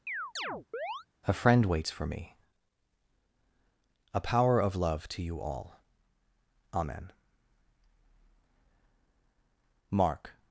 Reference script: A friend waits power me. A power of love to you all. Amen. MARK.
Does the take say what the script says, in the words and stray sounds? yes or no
no